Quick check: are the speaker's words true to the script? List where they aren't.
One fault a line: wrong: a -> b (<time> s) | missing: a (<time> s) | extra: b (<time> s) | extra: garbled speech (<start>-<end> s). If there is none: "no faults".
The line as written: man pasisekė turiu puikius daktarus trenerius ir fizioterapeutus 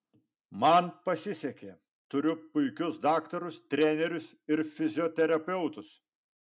no faults